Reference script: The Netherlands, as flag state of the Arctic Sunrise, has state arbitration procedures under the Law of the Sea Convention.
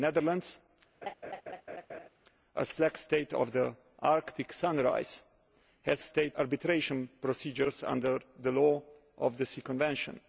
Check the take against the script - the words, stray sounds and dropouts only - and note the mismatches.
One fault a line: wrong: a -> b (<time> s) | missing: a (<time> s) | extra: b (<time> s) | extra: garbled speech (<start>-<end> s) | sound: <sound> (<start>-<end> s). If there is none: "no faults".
sound: laugh (1.0-2.1 s)